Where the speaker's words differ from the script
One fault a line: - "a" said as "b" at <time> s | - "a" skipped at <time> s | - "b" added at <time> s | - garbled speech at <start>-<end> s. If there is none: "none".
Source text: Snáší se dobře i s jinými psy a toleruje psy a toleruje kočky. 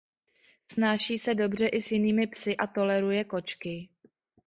- "psy a toleruje" skipped at 3.2 s